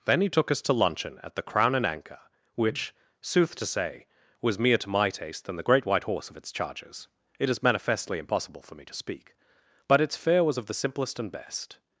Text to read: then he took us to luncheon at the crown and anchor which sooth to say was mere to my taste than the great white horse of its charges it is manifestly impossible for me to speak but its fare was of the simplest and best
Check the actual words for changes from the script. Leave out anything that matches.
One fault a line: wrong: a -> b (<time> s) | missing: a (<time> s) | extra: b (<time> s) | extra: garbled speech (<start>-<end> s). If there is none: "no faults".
no faults